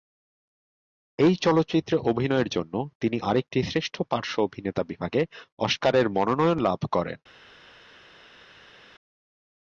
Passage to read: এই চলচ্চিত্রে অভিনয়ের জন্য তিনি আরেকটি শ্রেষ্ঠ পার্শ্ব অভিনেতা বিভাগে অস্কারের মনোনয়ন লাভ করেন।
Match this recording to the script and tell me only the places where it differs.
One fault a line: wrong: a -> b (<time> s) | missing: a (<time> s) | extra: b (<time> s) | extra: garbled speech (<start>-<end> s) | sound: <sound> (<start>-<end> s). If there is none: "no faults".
no faults